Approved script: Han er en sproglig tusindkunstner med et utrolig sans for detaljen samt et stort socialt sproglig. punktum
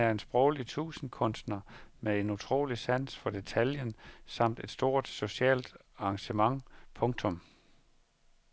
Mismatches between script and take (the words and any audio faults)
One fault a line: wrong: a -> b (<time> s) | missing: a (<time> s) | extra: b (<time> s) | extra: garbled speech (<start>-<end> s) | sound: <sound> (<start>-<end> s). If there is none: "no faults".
wrong: et -> en (2.2 s)
wrong: sproglig -> engagement (6.0 s)